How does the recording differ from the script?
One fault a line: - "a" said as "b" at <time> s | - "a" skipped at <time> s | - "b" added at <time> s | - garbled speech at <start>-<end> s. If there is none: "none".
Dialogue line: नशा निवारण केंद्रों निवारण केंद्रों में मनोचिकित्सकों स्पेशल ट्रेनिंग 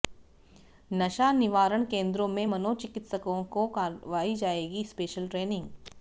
- "निवारण केंद्रों में मनोचिकित्सकों" said as "में मनोचिकित्सकों को करवाई जाएगी" at 2.3 s